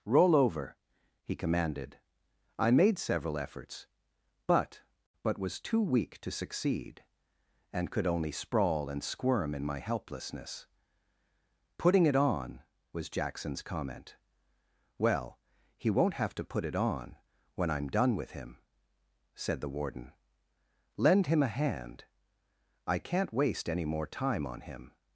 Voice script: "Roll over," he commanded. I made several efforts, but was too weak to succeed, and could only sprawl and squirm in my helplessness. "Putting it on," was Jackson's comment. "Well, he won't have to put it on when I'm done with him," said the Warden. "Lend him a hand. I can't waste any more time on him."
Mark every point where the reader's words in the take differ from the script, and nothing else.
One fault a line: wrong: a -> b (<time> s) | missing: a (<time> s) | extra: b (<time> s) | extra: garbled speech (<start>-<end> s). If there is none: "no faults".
extra: but (5.2 s)